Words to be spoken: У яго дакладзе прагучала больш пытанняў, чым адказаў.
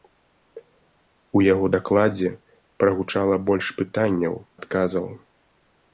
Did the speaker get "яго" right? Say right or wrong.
right